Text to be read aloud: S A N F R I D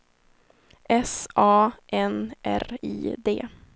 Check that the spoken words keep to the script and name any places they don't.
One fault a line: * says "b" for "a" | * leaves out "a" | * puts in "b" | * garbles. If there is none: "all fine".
* leaves out "F"